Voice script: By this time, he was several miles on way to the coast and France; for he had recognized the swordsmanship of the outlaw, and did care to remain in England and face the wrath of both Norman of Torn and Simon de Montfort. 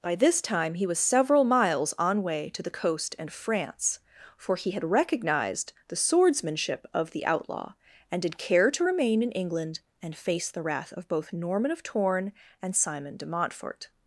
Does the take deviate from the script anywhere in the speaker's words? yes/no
no